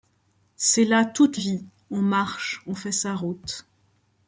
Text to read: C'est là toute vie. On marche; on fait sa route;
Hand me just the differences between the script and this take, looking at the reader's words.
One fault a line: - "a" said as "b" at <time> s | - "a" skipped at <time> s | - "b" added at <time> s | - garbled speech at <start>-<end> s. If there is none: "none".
none